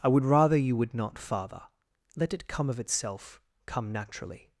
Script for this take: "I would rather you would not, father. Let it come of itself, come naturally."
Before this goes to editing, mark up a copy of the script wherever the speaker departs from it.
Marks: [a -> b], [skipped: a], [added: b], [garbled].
"I would rather you would not, father. Let it come of itself, come naturally."